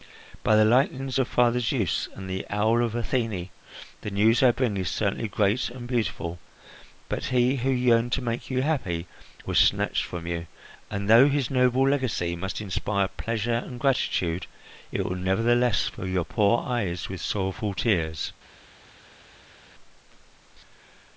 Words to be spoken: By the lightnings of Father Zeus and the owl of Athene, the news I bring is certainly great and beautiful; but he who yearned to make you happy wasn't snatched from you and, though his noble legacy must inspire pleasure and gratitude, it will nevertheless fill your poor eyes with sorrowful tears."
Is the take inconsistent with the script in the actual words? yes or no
yes